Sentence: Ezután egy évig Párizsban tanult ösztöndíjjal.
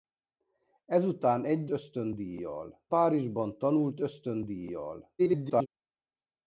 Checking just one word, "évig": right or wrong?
wrong